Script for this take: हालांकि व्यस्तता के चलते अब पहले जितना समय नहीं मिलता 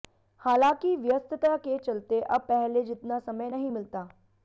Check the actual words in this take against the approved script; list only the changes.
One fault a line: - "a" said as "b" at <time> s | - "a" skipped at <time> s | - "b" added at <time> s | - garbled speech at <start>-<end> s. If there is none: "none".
none